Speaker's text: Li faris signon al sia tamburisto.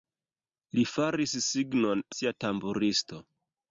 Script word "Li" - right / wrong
right